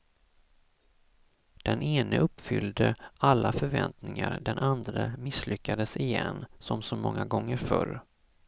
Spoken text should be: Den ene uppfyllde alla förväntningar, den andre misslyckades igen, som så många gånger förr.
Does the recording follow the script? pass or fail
pass